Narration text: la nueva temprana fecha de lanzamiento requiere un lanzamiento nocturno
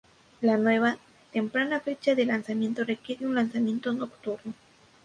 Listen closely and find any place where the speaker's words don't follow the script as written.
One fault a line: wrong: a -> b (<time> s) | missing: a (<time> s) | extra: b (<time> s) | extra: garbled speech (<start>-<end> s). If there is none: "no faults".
no faults